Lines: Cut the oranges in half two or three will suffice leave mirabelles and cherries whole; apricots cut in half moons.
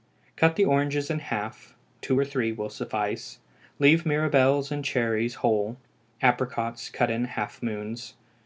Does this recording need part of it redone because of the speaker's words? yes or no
no